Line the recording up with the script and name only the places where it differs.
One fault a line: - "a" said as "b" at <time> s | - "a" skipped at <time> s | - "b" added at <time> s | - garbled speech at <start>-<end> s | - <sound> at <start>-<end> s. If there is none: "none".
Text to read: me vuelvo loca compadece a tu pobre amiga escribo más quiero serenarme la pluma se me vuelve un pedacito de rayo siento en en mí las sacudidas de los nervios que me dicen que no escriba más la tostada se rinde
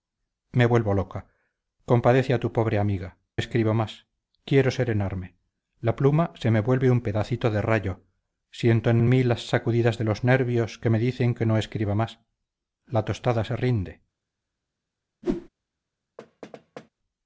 - whoosh at 15.2-15.5 s
- thud at 16.2-16.9 s